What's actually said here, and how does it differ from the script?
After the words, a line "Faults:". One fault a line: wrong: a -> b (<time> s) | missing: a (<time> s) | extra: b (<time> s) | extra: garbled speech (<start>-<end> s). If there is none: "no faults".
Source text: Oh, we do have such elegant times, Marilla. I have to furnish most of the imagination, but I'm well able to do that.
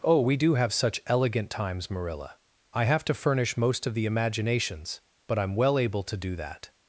Oh, we do have such elegant times, Marilla. I have to furnish most of the imaginations, but I'm well able to do that.
Faults:
wrong: imagination -> imaginations (4.1 s)